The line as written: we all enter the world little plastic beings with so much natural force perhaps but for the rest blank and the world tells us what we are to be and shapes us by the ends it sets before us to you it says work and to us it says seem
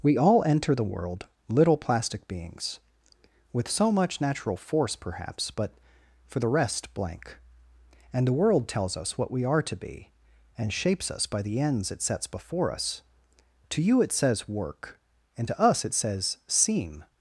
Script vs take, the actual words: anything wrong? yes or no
no